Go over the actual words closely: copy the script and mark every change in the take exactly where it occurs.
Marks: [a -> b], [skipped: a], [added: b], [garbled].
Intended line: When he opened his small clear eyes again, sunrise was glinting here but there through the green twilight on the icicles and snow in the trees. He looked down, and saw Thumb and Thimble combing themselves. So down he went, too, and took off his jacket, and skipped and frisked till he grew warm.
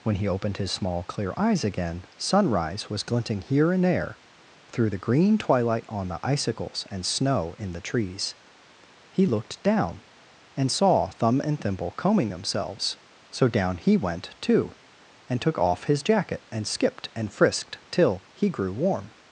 When he opened his small clear eyes again, sunrise was glinting here [but -> and] there through the green twilight on the icicles and snow in the trees. He looked down, and saw Thumb and Thimble combing themselves. So down he went, too, and took off his jacket, and skipped and frisked till he grew warm.